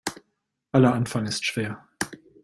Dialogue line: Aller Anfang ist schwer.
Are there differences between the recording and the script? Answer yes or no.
no